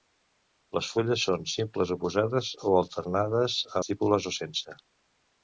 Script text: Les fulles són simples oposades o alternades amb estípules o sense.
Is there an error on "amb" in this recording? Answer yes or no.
yes